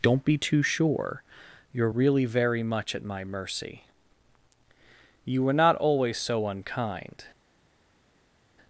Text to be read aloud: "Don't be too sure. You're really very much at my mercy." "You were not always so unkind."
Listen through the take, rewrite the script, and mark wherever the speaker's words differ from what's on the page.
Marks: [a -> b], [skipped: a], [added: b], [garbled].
"Don't be too sure. You're really very much at my mercy." "You were not always so unkind."